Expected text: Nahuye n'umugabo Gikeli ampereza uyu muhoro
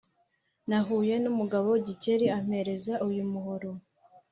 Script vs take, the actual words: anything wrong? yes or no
no